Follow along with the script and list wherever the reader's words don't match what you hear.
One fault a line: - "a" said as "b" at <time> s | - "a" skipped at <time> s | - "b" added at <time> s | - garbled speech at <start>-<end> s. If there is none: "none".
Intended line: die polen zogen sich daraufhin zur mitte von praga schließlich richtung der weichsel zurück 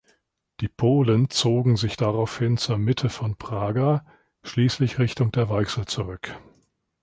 none